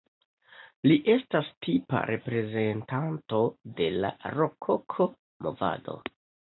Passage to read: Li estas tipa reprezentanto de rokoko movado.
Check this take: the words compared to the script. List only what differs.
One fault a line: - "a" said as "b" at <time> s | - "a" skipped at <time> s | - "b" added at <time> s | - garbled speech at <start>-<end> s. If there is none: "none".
- "la" added at 4.0 s